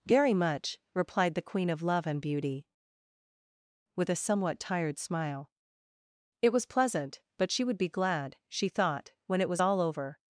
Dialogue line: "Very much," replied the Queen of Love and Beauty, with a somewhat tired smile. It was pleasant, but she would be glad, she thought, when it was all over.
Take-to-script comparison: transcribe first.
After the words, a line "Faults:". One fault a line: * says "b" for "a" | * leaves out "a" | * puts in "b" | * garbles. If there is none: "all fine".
"Very much," replied the Queen of Love and Beauty, with a somewhat tired smile. It was pleasant, but she would be glad, she thought, when it was all over.
Faults:
all fine